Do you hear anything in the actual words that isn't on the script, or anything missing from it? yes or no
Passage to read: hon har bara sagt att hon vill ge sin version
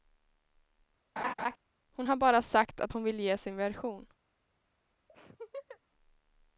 no